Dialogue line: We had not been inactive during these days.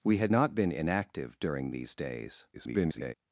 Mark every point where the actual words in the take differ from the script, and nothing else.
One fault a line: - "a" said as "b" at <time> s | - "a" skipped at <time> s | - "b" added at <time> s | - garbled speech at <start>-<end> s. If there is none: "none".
- garbled speech at 2.5-3.1 s